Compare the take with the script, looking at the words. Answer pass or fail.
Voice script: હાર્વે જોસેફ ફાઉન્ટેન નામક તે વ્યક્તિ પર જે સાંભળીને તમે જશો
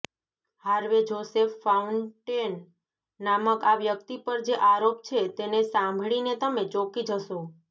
fail